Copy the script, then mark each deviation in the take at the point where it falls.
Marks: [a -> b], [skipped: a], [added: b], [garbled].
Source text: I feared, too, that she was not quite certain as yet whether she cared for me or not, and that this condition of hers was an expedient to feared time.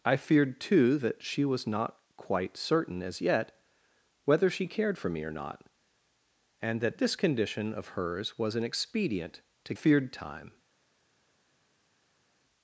I feared, too, that she was not quite certain as yet whether she cared for me or not, and that this condition of hers was an expedient to feared time.